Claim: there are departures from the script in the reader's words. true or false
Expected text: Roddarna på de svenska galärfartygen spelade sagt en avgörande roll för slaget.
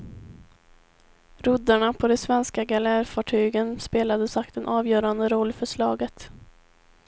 false